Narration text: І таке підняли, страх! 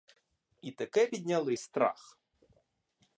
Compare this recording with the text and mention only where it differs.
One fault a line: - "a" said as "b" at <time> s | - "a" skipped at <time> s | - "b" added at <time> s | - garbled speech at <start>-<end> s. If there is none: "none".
none